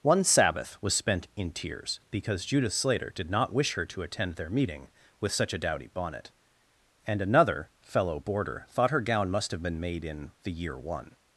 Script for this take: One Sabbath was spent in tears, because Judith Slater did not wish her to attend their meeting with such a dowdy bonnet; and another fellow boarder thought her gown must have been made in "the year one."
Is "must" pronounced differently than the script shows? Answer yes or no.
no